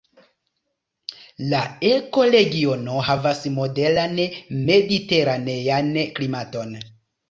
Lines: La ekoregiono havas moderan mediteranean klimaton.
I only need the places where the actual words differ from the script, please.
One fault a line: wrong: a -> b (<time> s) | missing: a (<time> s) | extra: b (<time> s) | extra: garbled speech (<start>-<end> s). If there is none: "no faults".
no faults